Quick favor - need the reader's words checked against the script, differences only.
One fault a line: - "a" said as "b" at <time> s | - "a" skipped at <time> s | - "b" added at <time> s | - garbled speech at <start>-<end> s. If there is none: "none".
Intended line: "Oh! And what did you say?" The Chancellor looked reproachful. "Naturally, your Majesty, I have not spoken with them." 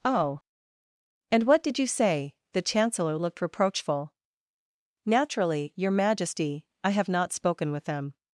none